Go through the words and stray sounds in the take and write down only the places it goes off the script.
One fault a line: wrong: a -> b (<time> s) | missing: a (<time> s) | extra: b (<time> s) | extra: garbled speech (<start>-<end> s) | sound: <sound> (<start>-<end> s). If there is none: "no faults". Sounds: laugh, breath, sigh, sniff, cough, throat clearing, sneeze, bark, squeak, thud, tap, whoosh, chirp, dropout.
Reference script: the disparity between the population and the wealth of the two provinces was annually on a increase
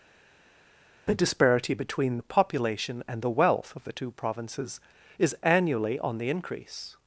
wrong: was -> is (5.2 s)
wrong: a -> the (6.2 s)